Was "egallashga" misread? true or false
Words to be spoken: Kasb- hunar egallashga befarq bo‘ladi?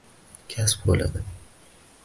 true